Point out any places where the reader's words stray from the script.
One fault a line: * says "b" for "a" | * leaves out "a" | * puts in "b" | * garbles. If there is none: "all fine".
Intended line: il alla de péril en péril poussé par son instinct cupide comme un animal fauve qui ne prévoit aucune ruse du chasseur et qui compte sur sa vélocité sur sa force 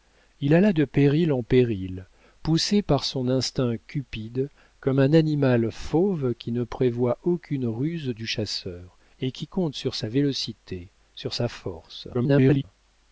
* garbles